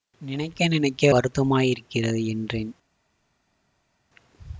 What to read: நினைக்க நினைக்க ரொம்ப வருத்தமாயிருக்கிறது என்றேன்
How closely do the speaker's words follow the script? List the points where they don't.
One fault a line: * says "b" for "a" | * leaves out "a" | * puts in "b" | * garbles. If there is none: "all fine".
* leaves out "ரொம்ப"